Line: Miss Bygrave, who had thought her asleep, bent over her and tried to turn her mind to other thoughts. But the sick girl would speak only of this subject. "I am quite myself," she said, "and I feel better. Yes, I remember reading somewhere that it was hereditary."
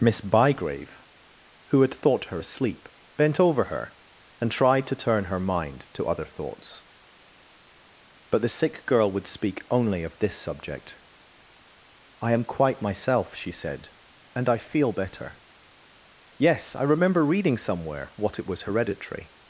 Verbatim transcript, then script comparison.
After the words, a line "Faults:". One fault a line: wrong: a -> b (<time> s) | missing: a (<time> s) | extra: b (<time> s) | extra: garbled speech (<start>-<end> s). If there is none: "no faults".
Miss Bygrave, who had thought her asleep, bent over her and tried to turn her mind to other thoughts. But the sick girl would speak only of this subject. "I am quite myself," she said, "and I feel better. Yes, I remember reading somewhere what it was hereditary."
Faults:
wrong: that -> what (18.2 s)